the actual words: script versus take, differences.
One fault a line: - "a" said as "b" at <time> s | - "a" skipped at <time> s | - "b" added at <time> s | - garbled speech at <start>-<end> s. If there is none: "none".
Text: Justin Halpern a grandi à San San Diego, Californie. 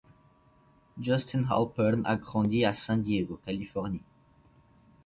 - "San" skipped at 3.0 s